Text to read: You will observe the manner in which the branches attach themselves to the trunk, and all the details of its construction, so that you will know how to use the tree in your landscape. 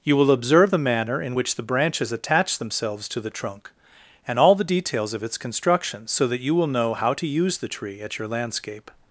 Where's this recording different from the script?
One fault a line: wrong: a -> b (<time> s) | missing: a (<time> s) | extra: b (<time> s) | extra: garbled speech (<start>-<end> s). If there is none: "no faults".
wrong: in -> at (8.0 s)